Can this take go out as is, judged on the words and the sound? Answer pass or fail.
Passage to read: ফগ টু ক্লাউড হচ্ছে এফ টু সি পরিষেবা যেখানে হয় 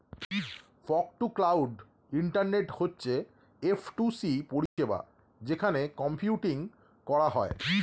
fail